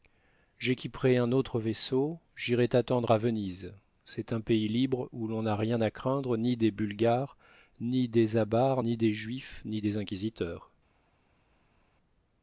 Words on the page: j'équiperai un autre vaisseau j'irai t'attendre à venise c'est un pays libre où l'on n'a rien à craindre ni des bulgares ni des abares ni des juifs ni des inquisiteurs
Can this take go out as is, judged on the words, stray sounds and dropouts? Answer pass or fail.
pass